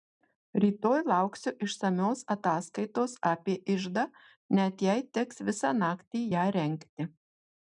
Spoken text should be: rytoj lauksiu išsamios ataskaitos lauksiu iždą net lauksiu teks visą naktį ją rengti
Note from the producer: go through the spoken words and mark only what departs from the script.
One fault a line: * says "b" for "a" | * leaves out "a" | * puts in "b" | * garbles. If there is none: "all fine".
* says "apie" for "lauksiu"
* says "jei" for "lauksiu"